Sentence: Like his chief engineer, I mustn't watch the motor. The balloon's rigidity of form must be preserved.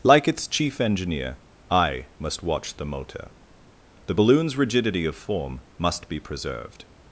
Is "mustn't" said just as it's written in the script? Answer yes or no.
no